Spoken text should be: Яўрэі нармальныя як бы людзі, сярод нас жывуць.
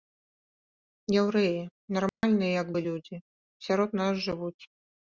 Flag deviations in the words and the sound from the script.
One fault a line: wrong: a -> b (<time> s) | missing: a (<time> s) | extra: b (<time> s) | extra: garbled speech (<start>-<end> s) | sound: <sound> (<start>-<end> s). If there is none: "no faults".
sound: dropout (2.1-2.2 s)